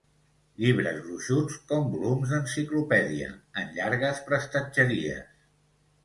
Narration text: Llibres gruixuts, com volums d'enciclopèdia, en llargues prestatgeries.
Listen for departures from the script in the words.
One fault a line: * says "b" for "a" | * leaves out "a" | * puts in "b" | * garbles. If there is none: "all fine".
all fine